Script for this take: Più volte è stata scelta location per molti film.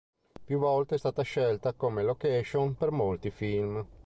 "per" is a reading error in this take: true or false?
false